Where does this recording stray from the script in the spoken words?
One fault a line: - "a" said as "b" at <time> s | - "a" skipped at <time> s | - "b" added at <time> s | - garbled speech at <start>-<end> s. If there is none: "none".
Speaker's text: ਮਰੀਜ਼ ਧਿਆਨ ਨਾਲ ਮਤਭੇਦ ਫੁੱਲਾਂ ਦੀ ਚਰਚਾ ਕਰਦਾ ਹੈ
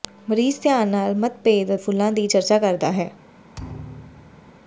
none